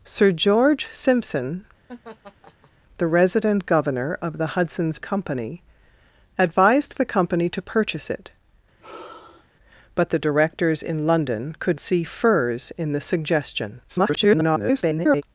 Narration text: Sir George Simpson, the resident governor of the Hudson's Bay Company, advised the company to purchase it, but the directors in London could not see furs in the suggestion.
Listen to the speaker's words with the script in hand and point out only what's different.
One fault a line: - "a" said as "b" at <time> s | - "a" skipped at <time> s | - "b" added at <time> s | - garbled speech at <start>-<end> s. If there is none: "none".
- "Bay" skipped at 5.0 s
- "not" skipped at 11.8 s
- garbled speech at 13.9-15.2 s